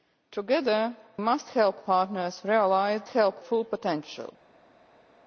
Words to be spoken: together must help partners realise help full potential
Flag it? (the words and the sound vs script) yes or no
no